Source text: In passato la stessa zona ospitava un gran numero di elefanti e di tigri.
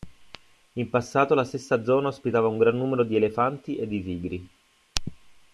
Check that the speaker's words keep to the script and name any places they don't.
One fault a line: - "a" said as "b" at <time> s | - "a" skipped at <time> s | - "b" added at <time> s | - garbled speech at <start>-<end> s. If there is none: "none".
none